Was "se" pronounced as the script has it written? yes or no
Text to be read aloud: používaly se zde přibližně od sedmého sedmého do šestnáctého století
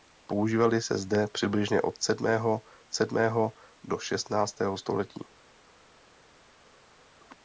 yes